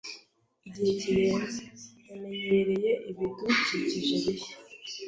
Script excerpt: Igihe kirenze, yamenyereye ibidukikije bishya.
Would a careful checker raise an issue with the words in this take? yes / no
no